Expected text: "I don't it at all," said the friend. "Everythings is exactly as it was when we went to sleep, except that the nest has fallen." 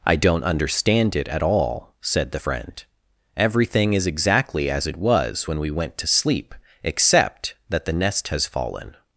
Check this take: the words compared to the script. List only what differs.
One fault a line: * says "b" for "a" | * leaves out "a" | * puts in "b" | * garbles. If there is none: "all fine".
* puts in "understand"
* says "Everything" for "Everythings"